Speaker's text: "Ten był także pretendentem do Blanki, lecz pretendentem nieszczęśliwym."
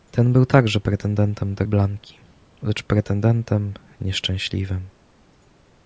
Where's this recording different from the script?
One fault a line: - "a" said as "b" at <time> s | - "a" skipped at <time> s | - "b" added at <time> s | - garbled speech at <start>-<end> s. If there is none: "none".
none